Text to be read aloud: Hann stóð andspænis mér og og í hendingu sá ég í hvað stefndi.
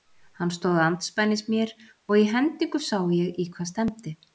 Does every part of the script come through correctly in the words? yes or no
no